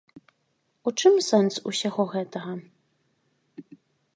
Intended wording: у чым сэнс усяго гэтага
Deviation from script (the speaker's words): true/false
false